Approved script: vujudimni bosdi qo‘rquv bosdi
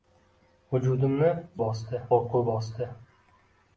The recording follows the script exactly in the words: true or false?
true